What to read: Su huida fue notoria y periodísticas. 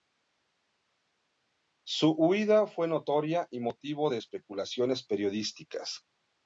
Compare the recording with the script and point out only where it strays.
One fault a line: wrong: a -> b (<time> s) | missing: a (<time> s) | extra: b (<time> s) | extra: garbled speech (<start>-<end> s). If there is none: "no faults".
extra: motivo de especulaciones (3.6 s)